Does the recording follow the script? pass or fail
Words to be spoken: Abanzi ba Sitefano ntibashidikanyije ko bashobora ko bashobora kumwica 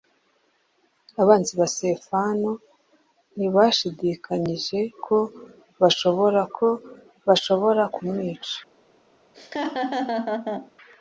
pass